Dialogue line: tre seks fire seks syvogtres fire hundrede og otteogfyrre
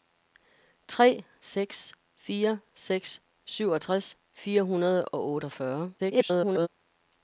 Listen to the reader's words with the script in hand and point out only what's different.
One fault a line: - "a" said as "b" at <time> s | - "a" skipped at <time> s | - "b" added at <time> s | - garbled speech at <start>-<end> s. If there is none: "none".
- garbled speech at 6.0-6.7 s